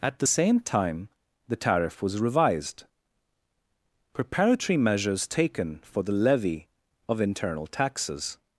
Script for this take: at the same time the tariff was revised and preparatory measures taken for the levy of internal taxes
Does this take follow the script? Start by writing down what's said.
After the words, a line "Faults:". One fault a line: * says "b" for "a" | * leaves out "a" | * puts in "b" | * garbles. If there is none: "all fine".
at the same time the tariff was revised preparatory measures taken for the levy of internal taxes
Faults:
* leaves out "and"